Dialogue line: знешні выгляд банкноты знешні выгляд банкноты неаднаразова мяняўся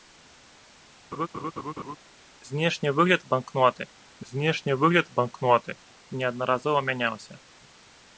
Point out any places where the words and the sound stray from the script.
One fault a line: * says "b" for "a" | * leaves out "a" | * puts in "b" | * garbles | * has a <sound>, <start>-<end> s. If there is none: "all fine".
* has a laugh, 1.1-2.0 s